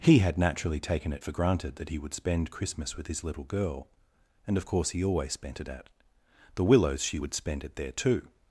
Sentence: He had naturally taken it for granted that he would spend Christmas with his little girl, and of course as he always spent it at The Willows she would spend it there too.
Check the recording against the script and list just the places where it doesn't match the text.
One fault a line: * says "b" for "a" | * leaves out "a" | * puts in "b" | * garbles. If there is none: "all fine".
* leaves out "as"